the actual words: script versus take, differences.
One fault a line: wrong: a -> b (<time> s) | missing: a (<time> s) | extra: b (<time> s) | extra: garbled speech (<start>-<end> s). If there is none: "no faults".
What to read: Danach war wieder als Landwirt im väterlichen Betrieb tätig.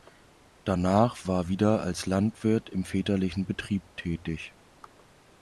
no faults